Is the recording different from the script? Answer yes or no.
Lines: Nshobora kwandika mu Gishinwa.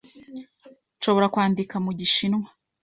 no